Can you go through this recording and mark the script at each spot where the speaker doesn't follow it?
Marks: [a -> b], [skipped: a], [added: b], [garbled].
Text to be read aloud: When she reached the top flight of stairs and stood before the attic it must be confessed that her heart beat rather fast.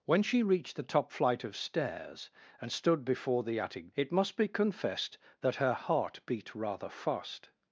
When she reached the top flight of stairs and stood before the attic it must be confessed that her heart beat rather fast.